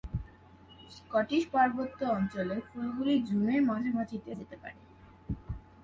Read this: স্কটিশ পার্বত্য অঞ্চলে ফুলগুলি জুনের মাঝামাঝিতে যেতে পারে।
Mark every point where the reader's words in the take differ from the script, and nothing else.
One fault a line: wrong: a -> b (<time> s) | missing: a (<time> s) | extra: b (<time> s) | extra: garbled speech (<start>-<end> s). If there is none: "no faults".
no faults